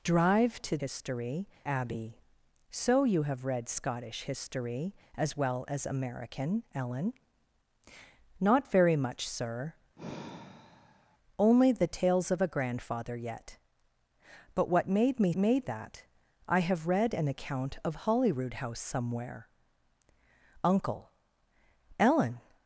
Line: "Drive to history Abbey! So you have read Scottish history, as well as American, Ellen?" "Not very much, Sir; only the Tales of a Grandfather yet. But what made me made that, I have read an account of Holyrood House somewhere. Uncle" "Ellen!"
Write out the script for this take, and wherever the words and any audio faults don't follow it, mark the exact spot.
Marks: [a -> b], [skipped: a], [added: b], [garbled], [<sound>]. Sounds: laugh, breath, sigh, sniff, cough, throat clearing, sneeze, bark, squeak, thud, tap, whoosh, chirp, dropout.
"Drive to history Abbey! So you have read Scottish history, as well as American, Ellen?" "Not very much, Sir; [sigh] only the Tales of a Grandfather yet. But what made me made that, I have read an account of Holyrood House somewhere. Uncle" "Ellen!"